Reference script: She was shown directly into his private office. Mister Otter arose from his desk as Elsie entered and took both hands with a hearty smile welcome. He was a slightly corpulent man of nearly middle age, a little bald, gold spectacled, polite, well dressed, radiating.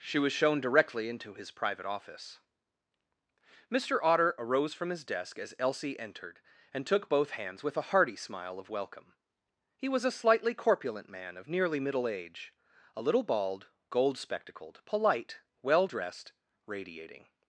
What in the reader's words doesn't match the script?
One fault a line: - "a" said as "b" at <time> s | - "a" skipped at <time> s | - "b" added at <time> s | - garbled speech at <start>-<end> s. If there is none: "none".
- "of" added at 8.6 s